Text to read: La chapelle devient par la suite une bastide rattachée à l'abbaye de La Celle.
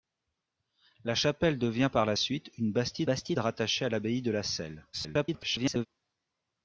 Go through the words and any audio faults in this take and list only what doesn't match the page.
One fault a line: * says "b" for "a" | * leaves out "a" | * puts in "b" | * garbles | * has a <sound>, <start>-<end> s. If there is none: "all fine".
* puts in "bastide"
* garbles